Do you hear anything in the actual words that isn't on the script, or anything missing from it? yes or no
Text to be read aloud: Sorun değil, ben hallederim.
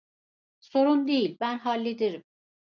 no